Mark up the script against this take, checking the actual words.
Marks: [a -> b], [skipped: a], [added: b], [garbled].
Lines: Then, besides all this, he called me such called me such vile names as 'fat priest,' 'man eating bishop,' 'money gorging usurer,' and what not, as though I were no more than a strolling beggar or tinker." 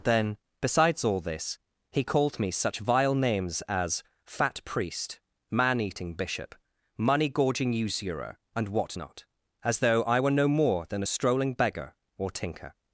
Then, besides all this, he called me such [skipped: called me such] vile names as 'fat priest,' 'man eating bishop,' 'money gorging usurer,' and what not, as though I were no more than a strolling beggar or tinker."